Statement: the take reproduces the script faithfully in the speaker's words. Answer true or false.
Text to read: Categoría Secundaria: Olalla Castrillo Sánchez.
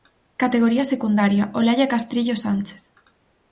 true